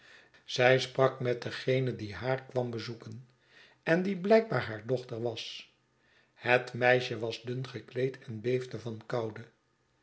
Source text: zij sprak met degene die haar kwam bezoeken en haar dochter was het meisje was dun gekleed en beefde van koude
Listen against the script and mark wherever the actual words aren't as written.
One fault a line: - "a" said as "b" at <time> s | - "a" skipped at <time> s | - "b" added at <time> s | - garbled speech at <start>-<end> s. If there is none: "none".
- "die blijkbaar" added at 4.0 s